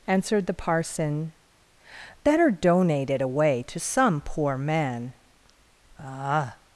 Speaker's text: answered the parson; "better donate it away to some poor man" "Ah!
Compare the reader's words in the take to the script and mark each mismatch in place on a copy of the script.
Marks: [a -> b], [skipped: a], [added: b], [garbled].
answered the parson; "better donate it away to some poor man" "Ah!